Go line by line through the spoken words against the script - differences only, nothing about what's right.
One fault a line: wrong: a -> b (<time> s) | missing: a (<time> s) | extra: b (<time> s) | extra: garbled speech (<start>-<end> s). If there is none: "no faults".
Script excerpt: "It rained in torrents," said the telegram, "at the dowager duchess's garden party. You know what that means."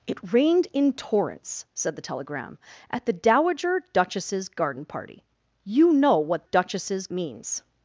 wrong: that -> duchess's (6.5 s)